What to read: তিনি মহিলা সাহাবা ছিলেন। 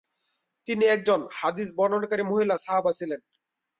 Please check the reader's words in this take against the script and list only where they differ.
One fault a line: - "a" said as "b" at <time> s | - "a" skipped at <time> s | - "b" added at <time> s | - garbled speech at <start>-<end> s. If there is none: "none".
- "একজন হাদিস বর্ণনাকারী" added at 0.9 s